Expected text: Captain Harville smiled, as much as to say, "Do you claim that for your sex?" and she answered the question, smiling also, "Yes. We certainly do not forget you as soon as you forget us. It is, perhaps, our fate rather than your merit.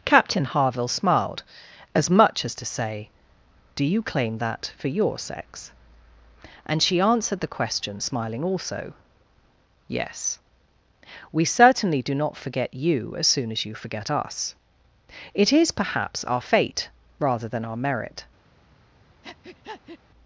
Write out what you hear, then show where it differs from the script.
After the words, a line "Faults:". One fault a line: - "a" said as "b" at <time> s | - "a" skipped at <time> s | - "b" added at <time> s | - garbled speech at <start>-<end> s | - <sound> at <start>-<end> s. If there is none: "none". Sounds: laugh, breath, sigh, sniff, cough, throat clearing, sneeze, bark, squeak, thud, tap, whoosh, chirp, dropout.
Captain Harville smiled, as much as to say, "Do you claim that for your sex?" and she answered the question, smiling also, "Yes. We certainly do not forget you as soon as you forget us. It is, perhaps, our fate rather than our merit.
Faults:
- "your" said as "our" at 17.7 s
- breath at 19.2-20.0 s